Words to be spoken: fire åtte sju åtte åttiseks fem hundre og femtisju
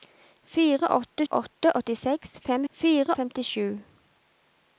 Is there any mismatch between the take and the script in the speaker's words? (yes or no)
yes